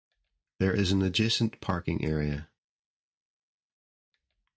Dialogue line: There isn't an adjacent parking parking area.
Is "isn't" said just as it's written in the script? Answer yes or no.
no